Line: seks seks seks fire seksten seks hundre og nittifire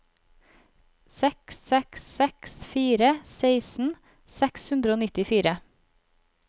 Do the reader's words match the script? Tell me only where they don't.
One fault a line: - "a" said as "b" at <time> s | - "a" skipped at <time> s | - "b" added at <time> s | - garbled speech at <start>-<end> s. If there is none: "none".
none